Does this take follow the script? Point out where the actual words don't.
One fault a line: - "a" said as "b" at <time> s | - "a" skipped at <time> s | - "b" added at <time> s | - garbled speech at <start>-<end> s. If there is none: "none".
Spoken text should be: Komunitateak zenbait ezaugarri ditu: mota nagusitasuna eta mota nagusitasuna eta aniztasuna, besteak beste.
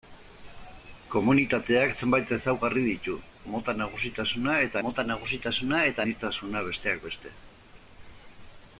none